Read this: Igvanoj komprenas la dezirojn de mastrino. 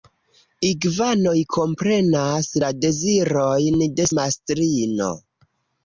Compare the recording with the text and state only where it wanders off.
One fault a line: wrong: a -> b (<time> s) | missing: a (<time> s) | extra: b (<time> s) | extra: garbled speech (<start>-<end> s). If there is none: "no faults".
no faults